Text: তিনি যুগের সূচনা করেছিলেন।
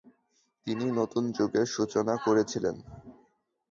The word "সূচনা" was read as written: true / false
true